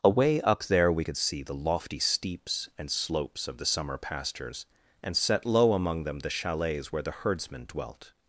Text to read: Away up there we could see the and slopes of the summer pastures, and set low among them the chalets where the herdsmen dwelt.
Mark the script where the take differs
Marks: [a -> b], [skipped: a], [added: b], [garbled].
Away up there we could see the [added: lofty steeps] and slopes of the summer pastures, and set low among them the chalets where the herdsmen dwelt.